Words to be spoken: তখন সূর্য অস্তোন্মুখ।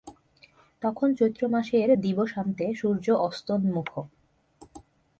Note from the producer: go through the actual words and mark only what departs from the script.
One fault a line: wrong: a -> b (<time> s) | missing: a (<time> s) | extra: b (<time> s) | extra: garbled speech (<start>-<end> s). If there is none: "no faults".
extra: চৈত্রমাসের দিবসান্তে (1.1 s)